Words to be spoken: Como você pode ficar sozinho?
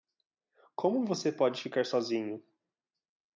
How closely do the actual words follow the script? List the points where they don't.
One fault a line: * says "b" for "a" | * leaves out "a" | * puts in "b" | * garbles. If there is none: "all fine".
all fine